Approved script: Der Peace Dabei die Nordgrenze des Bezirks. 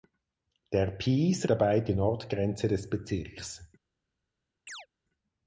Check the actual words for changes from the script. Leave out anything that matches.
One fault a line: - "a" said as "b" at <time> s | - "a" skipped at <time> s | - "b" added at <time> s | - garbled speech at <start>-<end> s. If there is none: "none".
none